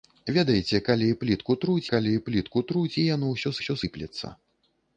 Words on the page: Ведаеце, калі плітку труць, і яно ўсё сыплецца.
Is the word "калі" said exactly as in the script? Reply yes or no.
yes